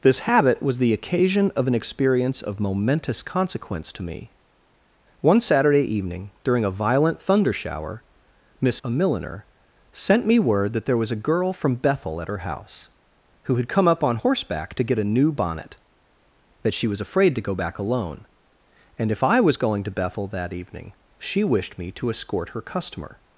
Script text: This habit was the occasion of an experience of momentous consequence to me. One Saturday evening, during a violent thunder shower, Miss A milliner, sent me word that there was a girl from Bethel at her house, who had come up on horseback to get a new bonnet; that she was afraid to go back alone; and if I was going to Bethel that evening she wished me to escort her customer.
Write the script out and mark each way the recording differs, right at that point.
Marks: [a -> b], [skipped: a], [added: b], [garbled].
This habit was the occasion of an experience of momentous consequence to me. One Saturday evening, during a violent thunder shower, Miss A milliner, sent me word that there was a girl from Bethel at her house, who had come up on horseback to get a new bonnet; that she was afraid to go back alone; and if I was going to Bethel that evening she wished me to escort her customer.